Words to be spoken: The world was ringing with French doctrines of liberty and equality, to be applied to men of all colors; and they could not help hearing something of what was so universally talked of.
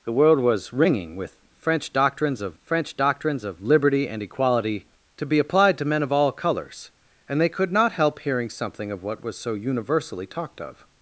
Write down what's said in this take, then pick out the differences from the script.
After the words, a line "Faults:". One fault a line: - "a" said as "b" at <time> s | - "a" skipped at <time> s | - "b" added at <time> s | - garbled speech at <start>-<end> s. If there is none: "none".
The world was ringing with French doctrines of French doctrines of liberty and equality, to be applied to men of all colors; and they could not help hearing something of what was so universally talked of.
Faults:
- "French doctrines of" added at 2.6 s